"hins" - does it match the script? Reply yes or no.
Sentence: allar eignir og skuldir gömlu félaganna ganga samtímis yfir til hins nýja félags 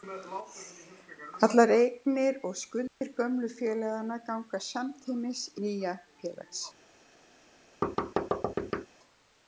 no